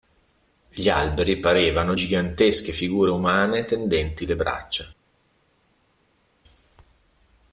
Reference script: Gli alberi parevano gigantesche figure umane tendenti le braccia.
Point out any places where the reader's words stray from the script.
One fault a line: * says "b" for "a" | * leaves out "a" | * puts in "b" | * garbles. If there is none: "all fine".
all fine